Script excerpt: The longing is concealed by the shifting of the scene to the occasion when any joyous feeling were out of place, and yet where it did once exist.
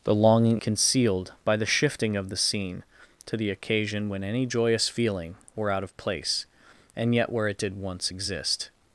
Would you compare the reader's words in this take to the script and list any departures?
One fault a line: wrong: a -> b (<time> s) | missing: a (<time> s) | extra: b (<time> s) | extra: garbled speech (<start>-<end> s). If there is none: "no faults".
missing: is (0.6 s)